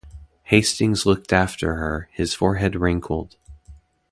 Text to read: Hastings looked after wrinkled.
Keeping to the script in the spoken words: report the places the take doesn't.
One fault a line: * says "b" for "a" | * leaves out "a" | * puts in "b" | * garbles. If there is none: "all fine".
* puts in "her his forehead"